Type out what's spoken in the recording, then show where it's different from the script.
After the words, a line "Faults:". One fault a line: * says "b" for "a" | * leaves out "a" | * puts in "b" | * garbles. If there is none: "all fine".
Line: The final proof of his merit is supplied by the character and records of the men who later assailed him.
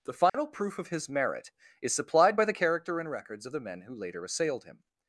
The final proof of his merit is supplied by the character and records of the men who later assailed him.
Faults:
all fine